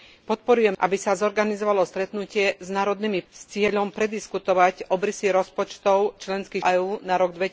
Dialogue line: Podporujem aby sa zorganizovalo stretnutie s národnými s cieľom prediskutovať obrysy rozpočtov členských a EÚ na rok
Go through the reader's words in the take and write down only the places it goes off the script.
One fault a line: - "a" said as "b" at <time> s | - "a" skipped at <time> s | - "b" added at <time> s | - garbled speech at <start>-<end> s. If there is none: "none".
none